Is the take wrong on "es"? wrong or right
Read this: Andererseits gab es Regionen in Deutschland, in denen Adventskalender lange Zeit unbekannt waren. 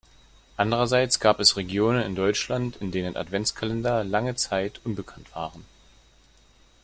right